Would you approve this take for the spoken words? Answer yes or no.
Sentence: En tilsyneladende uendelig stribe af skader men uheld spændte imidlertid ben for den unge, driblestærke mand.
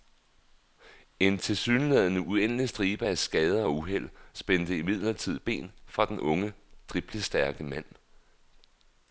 no